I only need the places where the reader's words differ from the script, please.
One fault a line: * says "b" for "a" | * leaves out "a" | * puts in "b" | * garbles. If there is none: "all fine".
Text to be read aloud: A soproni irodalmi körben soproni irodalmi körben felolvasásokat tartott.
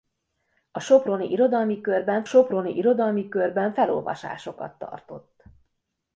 all fine